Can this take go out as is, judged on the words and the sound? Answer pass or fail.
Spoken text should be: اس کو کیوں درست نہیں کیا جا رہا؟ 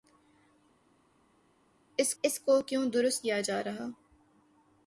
fail